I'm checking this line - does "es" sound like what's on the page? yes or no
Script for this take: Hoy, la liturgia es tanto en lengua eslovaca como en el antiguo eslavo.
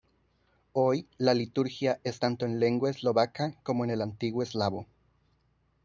yes